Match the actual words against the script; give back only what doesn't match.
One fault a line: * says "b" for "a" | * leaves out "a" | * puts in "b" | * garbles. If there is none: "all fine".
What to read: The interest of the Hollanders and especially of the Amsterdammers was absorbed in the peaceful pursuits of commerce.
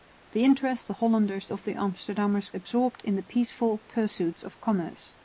* leaves out "of"
* leaves out "and especially"
* leaves out "was"